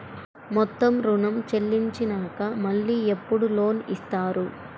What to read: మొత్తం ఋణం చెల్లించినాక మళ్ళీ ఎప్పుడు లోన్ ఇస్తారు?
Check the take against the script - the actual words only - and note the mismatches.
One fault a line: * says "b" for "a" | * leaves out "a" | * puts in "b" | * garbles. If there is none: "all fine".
all fine